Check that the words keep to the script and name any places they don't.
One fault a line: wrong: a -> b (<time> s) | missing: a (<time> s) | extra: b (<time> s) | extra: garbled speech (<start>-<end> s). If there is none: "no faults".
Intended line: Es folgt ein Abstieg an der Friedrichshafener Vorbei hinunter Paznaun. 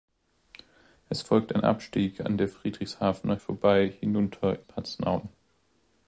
no faults